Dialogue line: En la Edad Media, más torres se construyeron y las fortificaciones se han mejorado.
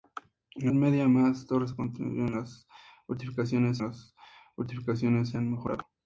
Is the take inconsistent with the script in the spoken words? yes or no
yes